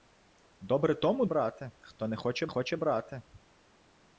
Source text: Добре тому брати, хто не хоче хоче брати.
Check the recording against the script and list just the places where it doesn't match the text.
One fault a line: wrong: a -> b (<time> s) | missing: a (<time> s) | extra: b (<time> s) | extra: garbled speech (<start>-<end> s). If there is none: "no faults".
no faults